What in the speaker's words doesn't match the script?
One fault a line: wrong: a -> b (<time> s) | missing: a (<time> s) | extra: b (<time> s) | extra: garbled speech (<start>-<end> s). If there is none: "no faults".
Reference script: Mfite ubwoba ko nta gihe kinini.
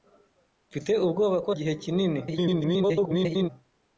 missing: nta (1.5 s)
extra: garbled speech (2.3-3.5 s)